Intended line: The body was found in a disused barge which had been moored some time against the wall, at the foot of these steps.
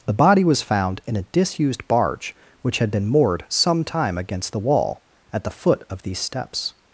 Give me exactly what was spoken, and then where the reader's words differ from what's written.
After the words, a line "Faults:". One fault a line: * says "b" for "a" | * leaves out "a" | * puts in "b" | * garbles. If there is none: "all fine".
The body was found in a disused barge which had been moored some time against the wall, at the foot of these steps.
Faults:
all fine